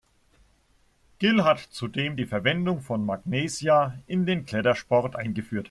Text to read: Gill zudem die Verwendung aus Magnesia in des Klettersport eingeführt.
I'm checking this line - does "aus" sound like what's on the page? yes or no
no